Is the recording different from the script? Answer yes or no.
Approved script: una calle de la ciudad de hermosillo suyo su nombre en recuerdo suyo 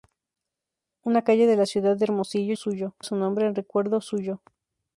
no